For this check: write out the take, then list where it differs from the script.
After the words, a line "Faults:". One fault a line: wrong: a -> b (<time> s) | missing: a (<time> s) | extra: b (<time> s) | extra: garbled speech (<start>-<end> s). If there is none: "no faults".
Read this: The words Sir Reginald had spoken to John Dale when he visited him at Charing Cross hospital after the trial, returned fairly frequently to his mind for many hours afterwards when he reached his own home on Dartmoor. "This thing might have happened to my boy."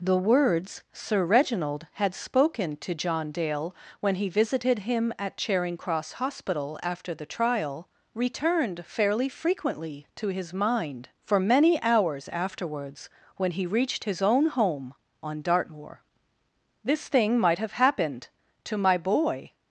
The words Sir Reginald had spoken to John Dale when he visited him at Charing Cross hospital after the trial, returned fairly frequently to his mind for many hours afterwards when he reached his own home on Dartmoor. "This thing might have happened to my boy."
Faults:
no faults